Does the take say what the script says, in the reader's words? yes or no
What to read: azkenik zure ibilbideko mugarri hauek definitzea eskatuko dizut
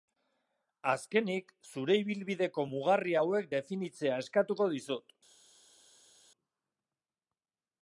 yes